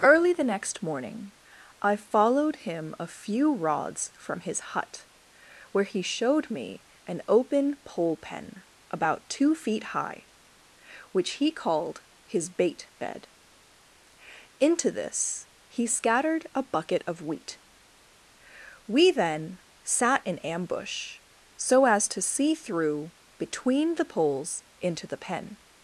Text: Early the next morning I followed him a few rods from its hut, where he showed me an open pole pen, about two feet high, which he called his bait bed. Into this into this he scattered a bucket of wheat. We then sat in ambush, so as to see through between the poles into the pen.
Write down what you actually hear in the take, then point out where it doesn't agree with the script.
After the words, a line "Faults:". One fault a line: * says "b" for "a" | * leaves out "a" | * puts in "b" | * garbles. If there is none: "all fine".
Early the next morning I followed him a few rods from his hut, where he showed me an open pole pen, about two feet high, which he called his bait bed. Into this he scattered a bucket of wheat. We then sat in ambush, so as to see through between the poles into the pen.
Faults:
* says "his" for "its"
* leaves out "into this"